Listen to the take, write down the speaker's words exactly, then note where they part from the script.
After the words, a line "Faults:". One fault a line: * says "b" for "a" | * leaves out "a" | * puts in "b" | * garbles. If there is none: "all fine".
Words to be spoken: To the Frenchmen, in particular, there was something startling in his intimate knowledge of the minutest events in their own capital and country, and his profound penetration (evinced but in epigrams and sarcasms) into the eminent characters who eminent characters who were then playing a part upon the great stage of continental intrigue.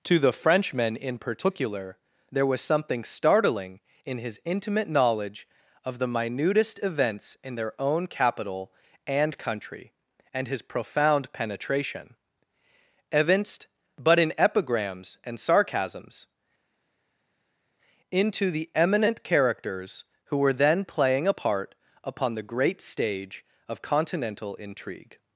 To the Frenchmen, in particular, there was something startling in his intimate knowledge of the minutest events in their own capital and country, and his profound penetration (evinced but in epigrams and sarcasms) into the eminent characters who were then playing a part upon the great stage of continental intrigue.
Faults:
* leaves out "eminent characters who"